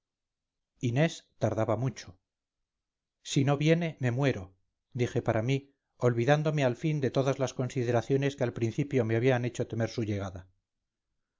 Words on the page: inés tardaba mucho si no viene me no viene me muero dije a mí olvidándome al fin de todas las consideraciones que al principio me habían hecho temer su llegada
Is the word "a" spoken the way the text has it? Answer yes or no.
no